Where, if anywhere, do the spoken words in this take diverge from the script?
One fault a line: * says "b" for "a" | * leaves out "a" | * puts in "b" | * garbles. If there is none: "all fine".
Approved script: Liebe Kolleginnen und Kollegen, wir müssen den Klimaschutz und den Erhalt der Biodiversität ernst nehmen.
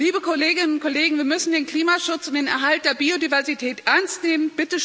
all fine